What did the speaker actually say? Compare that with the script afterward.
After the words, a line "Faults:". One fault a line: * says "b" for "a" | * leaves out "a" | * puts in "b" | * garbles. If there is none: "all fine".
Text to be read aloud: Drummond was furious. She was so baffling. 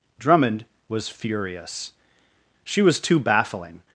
Drummond was furious. She was too baffling.
Faults:
* says "too" for "so"